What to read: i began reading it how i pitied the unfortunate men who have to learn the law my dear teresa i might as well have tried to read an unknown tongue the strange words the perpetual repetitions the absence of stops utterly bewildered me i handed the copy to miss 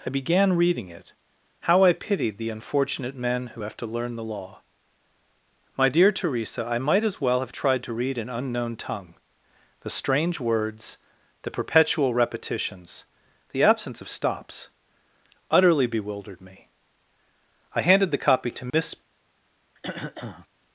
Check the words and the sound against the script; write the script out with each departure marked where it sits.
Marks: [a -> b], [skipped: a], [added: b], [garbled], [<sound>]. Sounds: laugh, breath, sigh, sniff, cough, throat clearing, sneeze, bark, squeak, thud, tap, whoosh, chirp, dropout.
i began reading it how i pitied the unfortunate men who have to learn the law my dear teresa i might as well have tried to read an unknown tongue the strange words the perpetual repetitions the absence of stops utterly bewildered me i handed the copy to miss [dropout] [throat clearing]